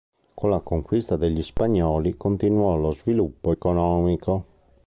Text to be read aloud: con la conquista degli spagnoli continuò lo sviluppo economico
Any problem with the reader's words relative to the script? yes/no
no